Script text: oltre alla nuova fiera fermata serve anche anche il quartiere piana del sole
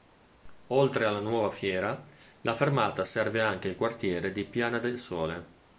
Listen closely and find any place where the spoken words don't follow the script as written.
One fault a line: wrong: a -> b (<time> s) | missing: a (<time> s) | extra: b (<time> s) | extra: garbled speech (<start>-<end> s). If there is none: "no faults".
extra: la (2.4 s)
missing: anche (3.7 s)
extra: di (4.3 s)